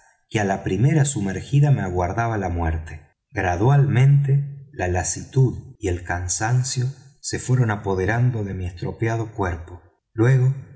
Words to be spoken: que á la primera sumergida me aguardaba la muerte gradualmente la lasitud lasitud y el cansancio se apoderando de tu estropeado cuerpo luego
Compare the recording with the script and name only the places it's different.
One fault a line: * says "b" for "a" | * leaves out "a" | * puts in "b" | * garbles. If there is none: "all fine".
* leaves out "lasitud"
* puts in "fueron"
* says "mi" for "tu"